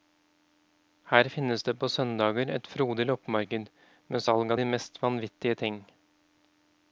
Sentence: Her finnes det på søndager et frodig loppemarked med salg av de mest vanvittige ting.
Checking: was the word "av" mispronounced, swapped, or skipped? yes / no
no